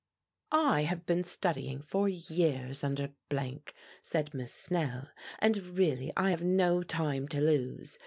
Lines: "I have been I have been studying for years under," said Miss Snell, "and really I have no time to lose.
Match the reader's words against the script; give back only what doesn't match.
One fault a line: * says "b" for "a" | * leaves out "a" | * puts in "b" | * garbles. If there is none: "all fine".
* leaves out "I have been"